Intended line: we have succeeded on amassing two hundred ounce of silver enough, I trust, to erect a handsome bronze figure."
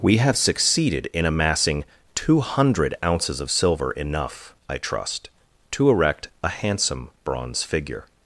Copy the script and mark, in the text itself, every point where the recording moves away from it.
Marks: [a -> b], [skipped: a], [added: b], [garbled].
we have succeeded [on -> in] amassing two hundred [ounce -> ounces] of silver enough, I trust, to erect a handsome bronze figure."